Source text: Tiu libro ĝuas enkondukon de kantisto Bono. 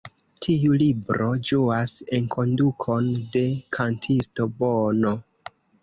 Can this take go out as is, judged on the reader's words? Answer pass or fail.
pass